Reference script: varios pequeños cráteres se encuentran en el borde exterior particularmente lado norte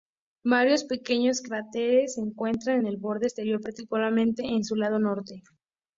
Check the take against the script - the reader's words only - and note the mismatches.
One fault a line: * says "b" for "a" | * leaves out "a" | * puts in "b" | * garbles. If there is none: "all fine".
* puts in "en su"